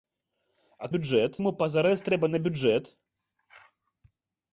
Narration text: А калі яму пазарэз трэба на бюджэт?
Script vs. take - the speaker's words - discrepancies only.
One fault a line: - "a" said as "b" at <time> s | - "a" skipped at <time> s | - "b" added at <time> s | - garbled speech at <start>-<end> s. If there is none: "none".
- "калі" said as "бюджэт" at 1.0 s